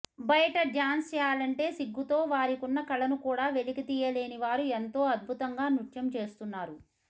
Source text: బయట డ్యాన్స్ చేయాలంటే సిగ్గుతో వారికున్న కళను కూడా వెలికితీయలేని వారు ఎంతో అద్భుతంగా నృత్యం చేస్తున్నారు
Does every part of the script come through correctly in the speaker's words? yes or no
yes